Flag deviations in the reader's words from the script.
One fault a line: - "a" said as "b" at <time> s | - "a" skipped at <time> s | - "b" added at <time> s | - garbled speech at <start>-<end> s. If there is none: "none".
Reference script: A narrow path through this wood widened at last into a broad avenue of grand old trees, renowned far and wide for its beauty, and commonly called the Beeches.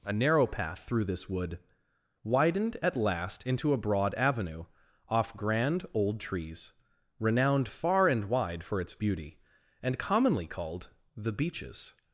- "of" said as "off" at 5.1 s